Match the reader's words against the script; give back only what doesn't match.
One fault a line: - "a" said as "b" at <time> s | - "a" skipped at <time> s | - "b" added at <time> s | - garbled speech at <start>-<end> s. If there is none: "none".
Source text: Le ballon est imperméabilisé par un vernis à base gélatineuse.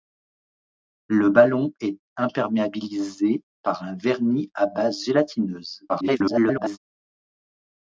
- garbled speech at 5.9-6.8 s